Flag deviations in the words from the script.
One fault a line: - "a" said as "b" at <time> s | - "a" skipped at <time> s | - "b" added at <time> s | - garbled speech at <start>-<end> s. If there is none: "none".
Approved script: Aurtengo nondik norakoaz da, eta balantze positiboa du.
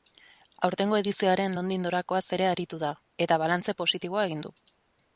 - "edizioaren" added at 1.0 s
- "ere aritu" added at 2.4 s
- "egin" added at 4.3 s